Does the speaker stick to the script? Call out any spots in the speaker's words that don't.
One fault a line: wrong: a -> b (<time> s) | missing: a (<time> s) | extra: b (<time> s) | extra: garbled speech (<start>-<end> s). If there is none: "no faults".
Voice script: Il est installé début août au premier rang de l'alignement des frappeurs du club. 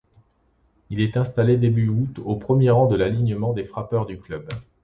no faults